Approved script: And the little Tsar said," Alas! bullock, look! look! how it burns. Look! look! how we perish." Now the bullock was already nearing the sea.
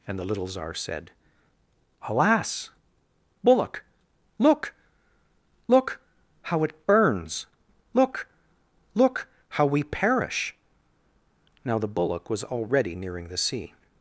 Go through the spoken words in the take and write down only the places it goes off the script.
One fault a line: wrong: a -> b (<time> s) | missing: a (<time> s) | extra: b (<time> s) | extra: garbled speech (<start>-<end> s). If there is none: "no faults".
no faults